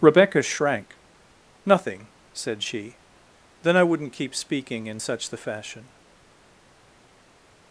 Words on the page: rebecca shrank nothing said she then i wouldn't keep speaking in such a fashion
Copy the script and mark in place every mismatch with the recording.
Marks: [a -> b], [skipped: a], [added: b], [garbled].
rebecca shrank nothing said she then i wouldn't keep speaking in such [a -> the] fashion